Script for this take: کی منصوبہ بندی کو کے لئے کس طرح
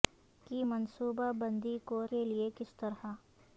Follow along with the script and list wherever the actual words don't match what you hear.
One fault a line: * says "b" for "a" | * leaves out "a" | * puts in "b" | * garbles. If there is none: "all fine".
all fine